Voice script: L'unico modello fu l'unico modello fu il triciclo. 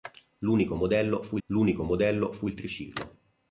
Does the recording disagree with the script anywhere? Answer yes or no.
no